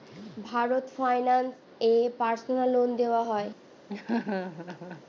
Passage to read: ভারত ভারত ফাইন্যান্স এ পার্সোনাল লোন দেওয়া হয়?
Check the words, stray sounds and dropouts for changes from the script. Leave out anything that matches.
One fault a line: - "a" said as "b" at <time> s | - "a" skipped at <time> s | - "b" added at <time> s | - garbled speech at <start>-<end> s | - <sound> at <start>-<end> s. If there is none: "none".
- "ভারত" skipped at 0.8 s
- laugh at 3.9-5.0 s